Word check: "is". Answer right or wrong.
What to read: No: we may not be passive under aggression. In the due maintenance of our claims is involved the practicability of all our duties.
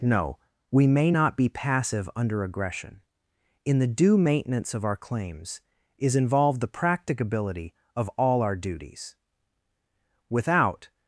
right